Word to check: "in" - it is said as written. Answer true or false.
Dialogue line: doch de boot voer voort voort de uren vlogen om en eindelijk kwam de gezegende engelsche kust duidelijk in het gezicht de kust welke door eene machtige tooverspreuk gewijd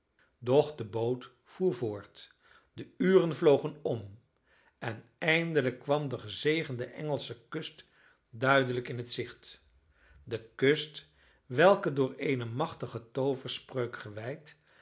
true